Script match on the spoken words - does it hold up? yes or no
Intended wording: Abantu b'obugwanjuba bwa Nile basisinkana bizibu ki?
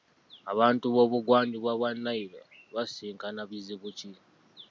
yes